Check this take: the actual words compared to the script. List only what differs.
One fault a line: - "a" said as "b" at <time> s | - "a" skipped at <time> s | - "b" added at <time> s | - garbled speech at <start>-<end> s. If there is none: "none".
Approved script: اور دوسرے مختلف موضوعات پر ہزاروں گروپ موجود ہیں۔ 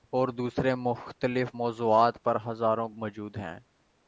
- "گروپ" skipped at 2.9 s